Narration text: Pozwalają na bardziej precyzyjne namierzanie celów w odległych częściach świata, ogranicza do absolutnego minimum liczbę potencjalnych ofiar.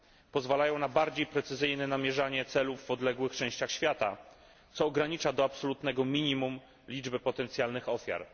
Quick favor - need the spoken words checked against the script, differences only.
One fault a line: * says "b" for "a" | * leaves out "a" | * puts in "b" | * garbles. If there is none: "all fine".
* puts in "co"